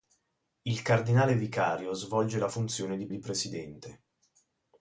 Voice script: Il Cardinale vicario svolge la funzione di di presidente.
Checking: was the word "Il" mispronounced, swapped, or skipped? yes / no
no